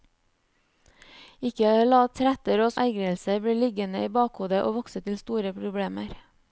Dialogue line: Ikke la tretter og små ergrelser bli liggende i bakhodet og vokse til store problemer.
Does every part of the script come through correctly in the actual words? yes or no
no